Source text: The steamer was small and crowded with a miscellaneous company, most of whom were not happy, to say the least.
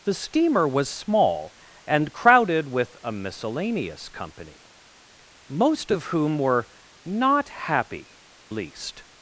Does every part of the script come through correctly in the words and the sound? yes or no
no